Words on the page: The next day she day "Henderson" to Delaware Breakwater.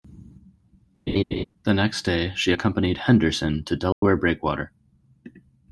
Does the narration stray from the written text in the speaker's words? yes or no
yes